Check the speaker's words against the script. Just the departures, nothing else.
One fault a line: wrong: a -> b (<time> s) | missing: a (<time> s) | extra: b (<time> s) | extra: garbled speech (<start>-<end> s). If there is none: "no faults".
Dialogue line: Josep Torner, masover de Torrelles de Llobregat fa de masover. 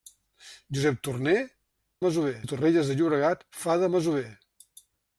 no faults